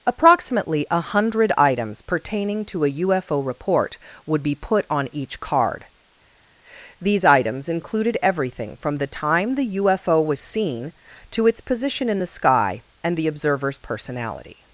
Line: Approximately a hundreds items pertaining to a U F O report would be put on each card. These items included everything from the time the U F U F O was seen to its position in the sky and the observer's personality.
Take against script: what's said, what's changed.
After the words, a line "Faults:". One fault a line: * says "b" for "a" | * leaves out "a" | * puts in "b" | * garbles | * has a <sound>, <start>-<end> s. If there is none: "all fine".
Approximately a hundred items pertaining to a U F O report would be put on each card. These items included everything from the time the U F O was seen to its position in the sky and the observer's personality.
Faults:
* says "hundred" for "hundreds"
* leaves out "U F"